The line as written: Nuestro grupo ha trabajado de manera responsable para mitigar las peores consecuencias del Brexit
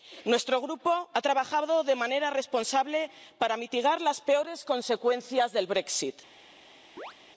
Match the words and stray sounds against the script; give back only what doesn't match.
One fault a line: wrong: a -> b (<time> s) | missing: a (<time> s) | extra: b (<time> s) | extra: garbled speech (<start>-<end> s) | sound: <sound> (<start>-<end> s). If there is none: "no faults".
sound: chirp (7.0-7.1 s)